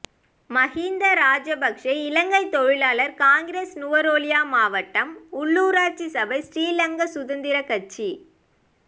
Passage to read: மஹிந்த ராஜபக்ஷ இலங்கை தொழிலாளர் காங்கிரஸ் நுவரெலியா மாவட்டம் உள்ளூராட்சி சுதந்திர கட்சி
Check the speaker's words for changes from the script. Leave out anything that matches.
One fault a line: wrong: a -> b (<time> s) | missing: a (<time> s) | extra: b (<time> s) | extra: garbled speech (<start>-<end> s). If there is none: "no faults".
extra: சபை ஸ்ரீலங்கா (6.1 s)